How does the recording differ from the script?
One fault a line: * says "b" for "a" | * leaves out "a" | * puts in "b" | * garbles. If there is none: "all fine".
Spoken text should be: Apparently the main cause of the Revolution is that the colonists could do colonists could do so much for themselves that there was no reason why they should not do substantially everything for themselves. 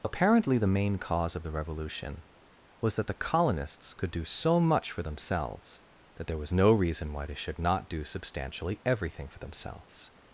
* says "was" for "is"
* leaves out "colonists could do"